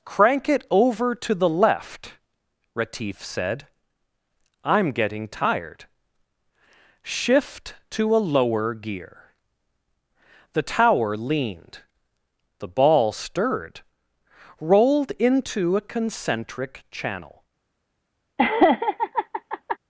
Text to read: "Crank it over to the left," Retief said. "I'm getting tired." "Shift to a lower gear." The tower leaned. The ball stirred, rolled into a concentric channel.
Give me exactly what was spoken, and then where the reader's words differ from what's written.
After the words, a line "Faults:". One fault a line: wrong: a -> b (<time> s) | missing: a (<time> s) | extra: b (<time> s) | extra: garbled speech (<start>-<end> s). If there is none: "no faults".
"Crank it over to the left," Retief said. "I'm getting tired." "Shift to a lower gear." The tower leaned. The ball stirred, rolled into a concentric channel.
Faults:
no faults